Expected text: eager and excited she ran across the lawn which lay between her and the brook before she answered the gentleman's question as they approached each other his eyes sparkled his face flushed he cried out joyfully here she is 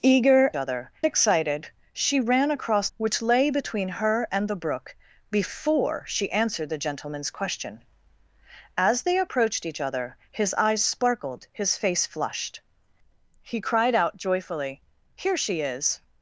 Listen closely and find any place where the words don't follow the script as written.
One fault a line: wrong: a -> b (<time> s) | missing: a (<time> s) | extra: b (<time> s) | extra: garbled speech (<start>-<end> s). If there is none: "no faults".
wrong: and -> other (0.5 s)
missing: the lawn (2.9 s)